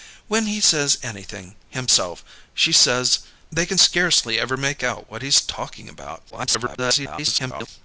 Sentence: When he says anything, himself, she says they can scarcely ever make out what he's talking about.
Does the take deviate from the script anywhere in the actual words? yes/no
yes